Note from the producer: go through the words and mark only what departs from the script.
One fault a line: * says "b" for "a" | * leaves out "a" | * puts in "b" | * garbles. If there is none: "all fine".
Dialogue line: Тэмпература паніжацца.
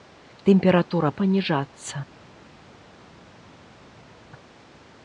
all fine